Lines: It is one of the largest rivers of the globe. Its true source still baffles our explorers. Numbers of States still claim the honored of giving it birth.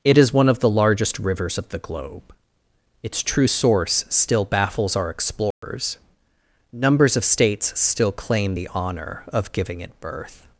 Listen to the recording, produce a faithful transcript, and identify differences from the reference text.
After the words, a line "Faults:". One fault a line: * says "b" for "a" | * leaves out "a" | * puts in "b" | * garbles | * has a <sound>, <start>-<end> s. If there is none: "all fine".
It is one of the largest rivers of the globe. Its true source still baffles our explorers. Numbers of States still claim the honor of giving it birth.
Faults:
* has a dropout, 5.5-5.6 s
* says "honor" for "honored"